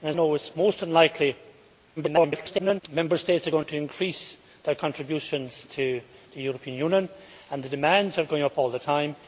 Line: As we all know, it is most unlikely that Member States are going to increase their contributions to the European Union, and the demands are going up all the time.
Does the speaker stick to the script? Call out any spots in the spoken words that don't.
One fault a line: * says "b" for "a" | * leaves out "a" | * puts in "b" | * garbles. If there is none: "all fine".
* leaves out "we all"
* garbles